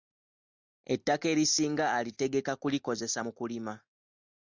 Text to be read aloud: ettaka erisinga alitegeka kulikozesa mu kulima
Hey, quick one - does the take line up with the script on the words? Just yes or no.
yes